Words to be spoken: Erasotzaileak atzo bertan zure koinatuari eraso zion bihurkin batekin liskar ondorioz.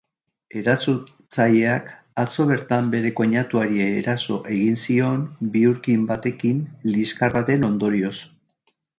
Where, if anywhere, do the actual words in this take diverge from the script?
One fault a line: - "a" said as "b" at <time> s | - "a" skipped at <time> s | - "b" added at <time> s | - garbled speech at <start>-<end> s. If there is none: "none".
- "zure" said as "bere" at 3.0 s
- "egin" added at 4.5 s
- "baten" added at 7.4 s